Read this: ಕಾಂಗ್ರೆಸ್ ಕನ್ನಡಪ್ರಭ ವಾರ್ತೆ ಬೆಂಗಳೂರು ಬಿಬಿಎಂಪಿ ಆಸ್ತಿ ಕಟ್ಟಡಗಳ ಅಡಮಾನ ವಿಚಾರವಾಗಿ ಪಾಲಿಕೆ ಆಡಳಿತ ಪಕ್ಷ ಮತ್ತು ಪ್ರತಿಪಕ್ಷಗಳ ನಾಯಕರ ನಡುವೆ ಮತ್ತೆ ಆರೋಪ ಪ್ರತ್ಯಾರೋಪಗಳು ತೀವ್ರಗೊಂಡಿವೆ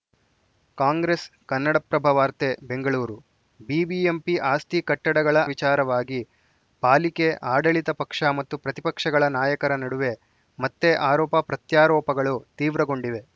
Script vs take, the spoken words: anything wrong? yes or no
yes